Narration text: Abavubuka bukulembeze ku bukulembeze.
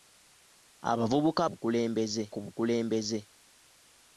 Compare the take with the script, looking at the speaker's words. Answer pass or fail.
pass